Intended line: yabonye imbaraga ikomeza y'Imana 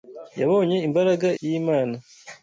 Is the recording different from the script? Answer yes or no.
yes